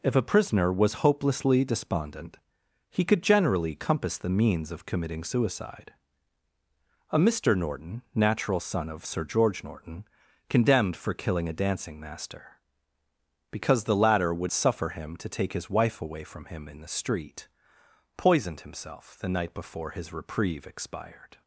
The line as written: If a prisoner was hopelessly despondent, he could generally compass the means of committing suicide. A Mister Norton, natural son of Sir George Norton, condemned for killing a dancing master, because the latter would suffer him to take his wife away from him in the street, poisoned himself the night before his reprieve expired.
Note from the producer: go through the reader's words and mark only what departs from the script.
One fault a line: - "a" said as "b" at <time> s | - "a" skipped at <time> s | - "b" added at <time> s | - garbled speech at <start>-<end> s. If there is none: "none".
none